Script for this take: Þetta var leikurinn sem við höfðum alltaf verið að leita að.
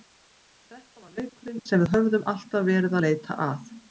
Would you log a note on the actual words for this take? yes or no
no